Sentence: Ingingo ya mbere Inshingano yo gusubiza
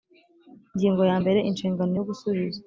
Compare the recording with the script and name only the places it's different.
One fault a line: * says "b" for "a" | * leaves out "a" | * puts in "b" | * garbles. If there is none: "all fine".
all fine